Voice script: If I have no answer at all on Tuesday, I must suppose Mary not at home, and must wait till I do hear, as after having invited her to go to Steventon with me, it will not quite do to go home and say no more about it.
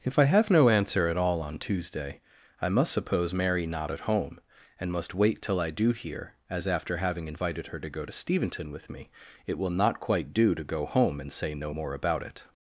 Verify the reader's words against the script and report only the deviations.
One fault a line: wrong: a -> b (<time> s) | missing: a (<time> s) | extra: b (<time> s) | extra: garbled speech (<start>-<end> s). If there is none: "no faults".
no faults